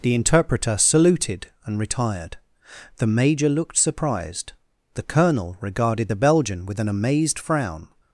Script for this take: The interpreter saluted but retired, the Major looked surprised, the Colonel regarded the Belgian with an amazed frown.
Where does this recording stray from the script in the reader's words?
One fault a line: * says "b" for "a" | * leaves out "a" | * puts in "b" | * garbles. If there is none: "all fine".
* says "and" for "but"